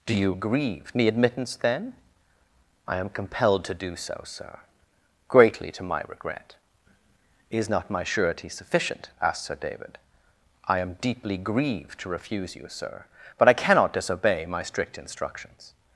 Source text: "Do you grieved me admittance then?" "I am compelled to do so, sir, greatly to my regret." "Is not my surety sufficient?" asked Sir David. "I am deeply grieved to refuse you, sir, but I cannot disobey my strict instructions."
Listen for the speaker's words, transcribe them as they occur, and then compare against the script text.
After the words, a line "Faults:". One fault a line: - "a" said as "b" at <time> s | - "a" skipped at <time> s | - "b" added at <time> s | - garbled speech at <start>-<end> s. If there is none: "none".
"Do you grieved me admittance then?" "I am compelled to do so, sir, greatly to my regret." "Is not my surety sufficient?" asked Sir David. "I am deeply grieved to refuse you, sir, but I cannot disobey my strict instructions."
Faults:
none